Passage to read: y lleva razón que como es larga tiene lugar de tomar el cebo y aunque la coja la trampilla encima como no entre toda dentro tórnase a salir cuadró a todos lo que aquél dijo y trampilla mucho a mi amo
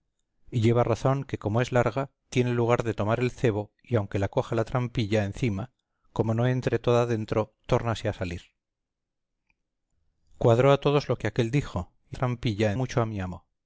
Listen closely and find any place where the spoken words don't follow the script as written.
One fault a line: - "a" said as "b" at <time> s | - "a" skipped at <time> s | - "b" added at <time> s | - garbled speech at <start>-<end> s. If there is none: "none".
none